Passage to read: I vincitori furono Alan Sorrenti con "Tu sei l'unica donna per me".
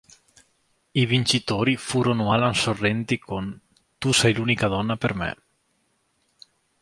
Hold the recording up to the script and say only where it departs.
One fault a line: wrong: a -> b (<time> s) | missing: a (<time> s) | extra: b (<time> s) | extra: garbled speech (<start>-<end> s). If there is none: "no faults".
no faults